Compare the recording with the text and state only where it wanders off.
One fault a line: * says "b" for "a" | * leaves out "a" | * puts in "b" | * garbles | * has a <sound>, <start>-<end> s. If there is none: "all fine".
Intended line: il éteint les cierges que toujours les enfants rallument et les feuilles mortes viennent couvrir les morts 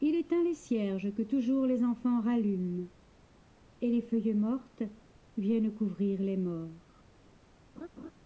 * has a laugh, 7.8-8.1 s